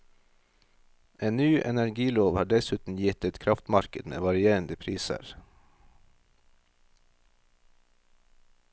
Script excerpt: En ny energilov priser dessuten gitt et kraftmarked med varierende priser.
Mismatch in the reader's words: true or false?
true